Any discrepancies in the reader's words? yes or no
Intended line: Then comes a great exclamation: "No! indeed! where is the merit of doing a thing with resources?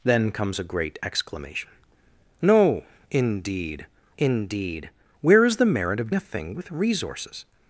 yes